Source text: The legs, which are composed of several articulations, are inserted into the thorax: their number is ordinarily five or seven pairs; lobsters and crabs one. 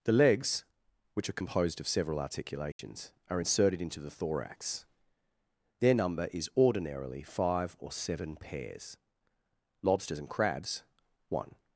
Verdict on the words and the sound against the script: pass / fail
fail